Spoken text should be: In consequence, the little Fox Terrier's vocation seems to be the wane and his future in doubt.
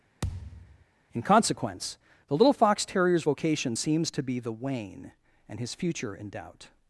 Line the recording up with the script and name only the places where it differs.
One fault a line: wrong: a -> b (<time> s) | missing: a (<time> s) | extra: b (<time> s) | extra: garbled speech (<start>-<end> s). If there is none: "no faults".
no faults